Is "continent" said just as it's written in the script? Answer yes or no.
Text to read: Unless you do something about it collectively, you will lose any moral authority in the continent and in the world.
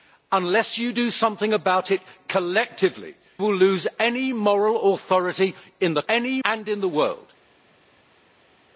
no